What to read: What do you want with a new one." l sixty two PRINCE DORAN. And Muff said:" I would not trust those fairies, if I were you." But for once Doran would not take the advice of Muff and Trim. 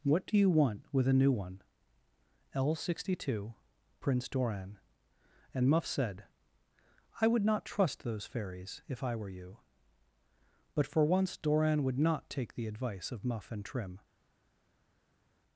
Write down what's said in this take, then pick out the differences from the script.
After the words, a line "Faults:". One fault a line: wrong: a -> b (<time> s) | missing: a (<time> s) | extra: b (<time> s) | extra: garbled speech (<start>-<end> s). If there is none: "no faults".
What do you want with a new one." l sixty two PRINCE DORAN. And Muff said:" I would not trust those fairies, if I were you." But for once Doran would not take the advice of Muff and Trim.
Faults:
no faults